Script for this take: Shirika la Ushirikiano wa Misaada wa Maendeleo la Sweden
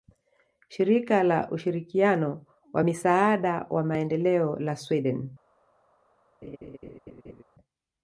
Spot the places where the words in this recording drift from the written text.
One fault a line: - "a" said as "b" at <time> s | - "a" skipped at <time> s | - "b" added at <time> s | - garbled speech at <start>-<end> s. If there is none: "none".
none